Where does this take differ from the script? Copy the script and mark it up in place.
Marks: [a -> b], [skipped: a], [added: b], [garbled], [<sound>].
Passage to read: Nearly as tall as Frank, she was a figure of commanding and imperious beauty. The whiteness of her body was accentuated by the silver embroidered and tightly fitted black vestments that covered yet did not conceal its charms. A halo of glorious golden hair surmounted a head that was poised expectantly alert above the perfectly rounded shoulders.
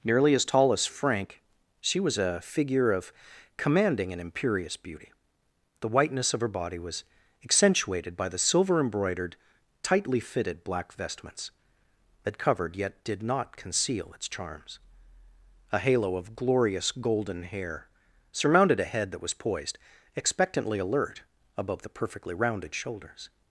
Nearly as tall as Frank, she was a figure of commanding and imperious beauty. The whiteness of her body was accentuated by the silver embroidered [skipped: and] tightly fitted black vestments that covered yet did not conceal its charms. A halo of glorious golden hair surmounted a head that was poised expectantly alert above the perfectly rounded shoulders.